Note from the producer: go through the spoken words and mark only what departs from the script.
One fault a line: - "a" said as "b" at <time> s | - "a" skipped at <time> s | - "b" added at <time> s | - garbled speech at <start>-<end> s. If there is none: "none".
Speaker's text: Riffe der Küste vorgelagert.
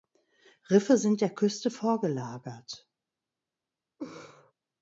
- "sind" added at 1.0 s